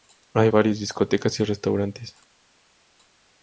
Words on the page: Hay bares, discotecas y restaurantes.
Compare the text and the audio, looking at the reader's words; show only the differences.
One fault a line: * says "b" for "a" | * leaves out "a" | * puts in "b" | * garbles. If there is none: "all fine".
all fine